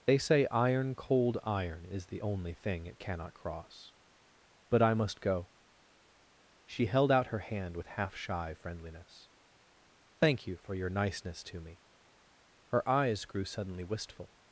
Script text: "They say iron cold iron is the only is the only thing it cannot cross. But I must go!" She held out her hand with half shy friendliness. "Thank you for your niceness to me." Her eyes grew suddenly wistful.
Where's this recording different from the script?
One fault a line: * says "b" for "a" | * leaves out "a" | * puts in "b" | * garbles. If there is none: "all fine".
* leaves out "is the only"